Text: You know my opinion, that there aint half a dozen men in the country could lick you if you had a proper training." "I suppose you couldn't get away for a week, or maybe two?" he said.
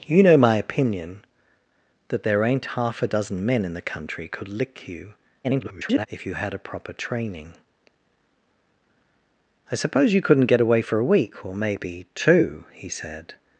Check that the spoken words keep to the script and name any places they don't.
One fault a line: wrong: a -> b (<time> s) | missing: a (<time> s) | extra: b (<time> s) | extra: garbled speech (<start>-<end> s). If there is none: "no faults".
extra: garbled speech (5.4-6.1 s)